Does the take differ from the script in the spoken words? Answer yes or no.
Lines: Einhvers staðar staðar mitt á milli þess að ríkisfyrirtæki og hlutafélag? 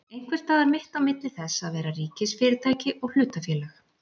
yes